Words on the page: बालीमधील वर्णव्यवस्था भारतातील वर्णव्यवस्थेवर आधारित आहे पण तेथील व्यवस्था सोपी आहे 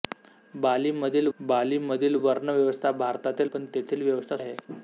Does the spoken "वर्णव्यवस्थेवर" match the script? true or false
false